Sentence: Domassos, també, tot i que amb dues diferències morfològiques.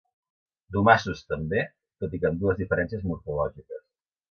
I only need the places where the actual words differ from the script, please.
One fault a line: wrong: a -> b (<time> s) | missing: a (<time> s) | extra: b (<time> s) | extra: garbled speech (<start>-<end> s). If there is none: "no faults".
no faults